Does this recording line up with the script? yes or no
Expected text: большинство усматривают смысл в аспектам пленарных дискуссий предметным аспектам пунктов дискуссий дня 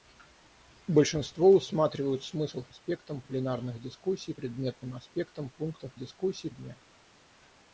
yes